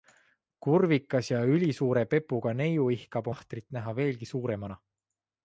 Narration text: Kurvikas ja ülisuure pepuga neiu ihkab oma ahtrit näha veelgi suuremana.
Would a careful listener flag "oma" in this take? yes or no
yes